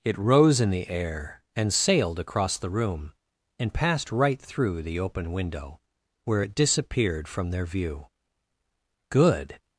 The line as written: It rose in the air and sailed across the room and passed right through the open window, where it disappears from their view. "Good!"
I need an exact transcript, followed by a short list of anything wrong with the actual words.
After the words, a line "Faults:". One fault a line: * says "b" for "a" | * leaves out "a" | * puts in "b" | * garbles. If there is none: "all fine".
It rose in the air and sailed across the room and passed right through the open window, where it disappeared from their view. "Good!"
Faults:
* says "disappeared" for "disappears"